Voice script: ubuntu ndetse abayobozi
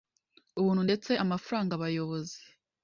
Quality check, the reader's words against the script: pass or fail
fail